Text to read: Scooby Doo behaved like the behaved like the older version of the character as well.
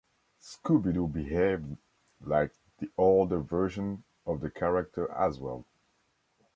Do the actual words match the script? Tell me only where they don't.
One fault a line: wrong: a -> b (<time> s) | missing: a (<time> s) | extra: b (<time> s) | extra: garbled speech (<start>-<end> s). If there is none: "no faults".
missing: behaved like the (2.9 s)